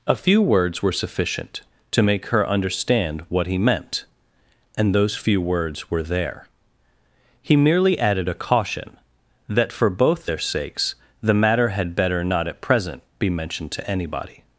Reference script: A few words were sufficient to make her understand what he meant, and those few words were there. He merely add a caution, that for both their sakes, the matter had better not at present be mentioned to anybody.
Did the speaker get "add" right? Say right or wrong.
wrong